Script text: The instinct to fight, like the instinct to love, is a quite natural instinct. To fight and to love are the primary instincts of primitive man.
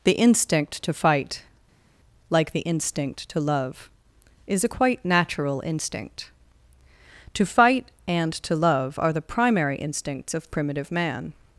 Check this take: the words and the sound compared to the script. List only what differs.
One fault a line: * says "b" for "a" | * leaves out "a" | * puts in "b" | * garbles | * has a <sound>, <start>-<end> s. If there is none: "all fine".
all fine